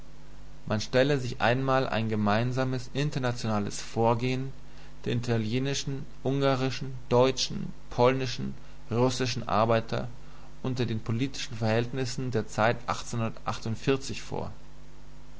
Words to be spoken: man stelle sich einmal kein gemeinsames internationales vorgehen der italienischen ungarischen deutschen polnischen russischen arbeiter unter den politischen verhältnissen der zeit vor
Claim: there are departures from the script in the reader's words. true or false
true